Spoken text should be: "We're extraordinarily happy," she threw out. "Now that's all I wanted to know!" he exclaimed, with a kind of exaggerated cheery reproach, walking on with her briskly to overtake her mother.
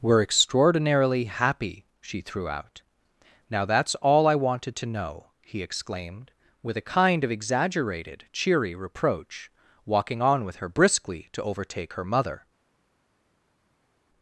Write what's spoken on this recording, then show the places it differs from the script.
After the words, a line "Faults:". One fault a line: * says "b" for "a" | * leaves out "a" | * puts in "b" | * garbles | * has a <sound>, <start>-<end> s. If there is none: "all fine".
"We're extraordinarily happy," she threw out. "Now that's all I wanted to know!" he exclaimed, with a kind of exaggerated cheery reproach, walking on with her briskly to overtake her mother.
Faults:
all fine